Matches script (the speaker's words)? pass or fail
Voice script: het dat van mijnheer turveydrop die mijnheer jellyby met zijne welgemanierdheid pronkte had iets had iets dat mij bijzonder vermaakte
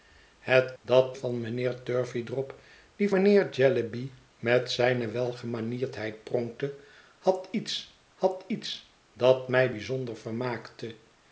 pass